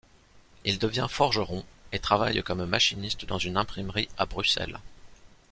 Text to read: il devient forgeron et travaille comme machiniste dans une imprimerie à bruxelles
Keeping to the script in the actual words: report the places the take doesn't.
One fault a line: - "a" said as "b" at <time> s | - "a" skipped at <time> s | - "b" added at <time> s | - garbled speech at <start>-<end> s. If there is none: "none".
none